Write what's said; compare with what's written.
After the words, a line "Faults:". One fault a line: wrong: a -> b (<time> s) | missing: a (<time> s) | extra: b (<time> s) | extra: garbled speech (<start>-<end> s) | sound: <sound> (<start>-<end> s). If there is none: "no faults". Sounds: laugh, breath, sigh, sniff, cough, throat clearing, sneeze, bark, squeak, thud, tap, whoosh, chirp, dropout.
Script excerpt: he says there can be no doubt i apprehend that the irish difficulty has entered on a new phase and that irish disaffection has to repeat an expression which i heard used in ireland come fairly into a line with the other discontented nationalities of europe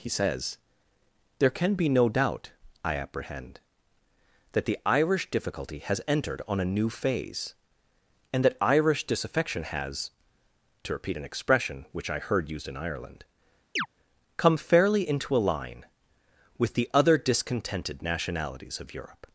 he says there can be no doubt i apprehend that the irish difficulty has entered on a new phase and that irish disaffection has to repeat an expression which i heard used in ireland come fairly into a line with the other discontented nationalities of europe
Faults:
sound: chirp (13.8-13.9 s)